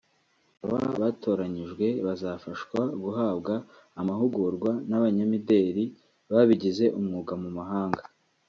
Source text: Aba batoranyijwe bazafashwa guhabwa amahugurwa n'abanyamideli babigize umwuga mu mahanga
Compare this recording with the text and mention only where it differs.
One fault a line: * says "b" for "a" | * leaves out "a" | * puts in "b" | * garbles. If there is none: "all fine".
all fine